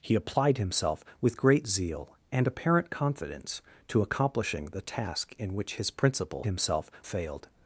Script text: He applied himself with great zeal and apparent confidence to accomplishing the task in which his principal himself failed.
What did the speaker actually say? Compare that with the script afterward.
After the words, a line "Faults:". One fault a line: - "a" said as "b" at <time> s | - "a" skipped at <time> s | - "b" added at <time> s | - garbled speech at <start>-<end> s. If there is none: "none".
He applied himself with great zeal and apparent confidence to accomplishing the task in which his principal himself failed.
Faults:
none